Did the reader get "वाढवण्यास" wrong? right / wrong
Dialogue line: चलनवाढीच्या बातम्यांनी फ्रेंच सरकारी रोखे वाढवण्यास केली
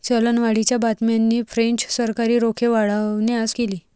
right